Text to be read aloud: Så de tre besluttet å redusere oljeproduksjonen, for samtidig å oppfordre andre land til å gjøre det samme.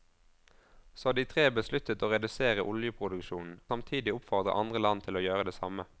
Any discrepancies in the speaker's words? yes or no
yes